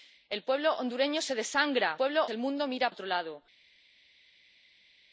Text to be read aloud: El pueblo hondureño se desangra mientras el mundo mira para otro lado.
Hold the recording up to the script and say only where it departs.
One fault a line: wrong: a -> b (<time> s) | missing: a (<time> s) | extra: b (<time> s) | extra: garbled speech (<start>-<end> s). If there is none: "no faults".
wrong: mientras -> pueblo (1.9 s)
missing: para (2.9 s)